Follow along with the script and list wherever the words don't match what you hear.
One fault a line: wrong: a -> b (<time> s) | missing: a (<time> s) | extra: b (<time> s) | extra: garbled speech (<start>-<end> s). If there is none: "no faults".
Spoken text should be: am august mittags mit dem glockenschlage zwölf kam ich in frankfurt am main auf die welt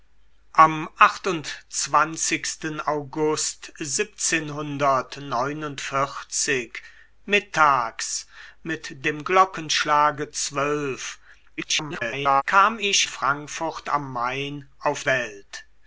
extra: garbled speech (11.6-12.4 s)
missing: in (13.1 s)
missing: die (15.0 s)